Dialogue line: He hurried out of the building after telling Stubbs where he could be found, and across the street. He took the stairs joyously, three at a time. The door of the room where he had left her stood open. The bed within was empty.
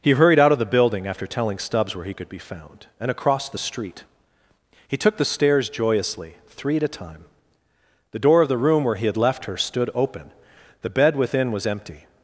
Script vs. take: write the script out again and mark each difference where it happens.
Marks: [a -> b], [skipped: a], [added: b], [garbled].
He hurried out of the building after telling Stubbs where he could be found, and across the street. He took the stairs joyously, three at a time. The door of the room where he had left her stood open. The bed within was empty.